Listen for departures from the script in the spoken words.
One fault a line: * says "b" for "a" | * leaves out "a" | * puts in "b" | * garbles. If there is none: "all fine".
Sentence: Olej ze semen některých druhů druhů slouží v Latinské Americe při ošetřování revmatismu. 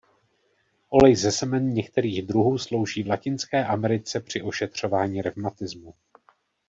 * leaves out "druhů"